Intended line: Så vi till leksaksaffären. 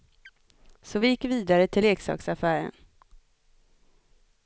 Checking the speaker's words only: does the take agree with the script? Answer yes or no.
no